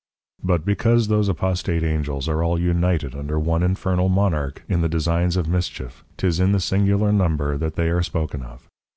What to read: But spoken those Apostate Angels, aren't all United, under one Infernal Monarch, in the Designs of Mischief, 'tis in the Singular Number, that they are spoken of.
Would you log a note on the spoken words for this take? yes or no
yes